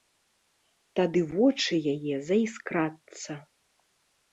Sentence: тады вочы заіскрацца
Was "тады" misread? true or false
false